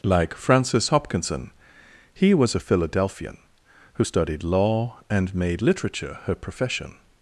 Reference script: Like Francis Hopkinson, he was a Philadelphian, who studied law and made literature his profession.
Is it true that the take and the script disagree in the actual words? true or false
true